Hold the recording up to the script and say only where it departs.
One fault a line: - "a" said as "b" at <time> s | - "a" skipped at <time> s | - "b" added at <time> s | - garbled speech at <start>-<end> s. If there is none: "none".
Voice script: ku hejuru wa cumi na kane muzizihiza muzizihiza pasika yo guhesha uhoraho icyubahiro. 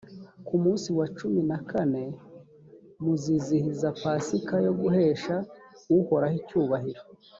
- "hejuru" said as "munsi" at 0.6 s
- "muzizihiza" skipped at 3.9 s